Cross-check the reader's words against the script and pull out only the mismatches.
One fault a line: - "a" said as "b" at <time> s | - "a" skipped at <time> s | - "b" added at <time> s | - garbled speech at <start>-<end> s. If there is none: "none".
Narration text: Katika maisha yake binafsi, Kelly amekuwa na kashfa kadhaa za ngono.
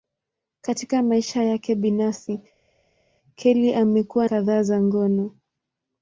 - "na kashfa" skipped at 4.3 s